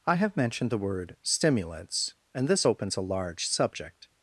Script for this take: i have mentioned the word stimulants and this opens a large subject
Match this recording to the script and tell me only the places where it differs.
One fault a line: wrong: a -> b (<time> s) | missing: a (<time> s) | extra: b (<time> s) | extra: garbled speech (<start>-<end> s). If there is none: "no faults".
no faults